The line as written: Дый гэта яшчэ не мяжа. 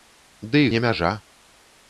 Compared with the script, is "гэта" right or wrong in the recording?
wrong